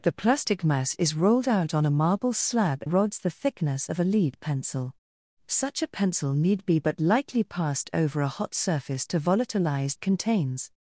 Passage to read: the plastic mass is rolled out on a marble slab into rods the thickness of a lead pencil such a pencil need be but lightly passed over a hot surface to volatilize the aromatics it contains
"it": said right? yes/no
no